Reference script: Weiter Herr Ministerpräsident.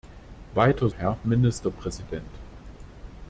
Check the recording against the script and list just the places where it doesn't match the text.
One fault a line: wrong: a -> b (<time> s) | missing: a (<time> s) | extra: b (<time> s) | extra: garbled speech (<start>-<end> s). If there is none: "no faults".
no faults